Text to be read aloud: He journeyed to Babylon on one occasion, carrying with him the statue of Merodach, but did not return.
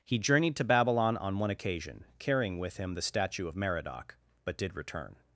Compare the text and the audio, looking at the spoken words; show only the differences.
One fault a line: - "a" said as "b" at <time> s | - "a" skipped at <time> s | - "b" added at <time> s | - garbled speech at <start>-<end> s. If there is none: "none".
- "not" skipped at 4.8 s